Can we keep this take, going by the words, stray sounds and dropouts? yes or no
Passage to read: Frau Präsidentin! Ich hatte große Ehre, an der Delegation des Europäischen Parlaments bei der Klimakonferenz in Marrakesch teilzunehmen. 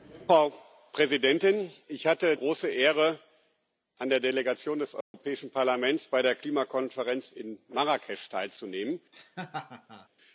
no